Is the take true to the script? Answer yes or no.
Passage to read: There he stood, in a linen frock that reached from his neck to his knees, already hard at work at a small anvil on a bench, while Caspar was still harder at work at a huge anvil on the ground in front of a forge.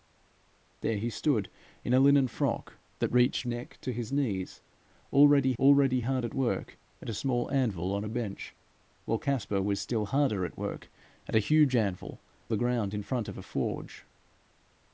no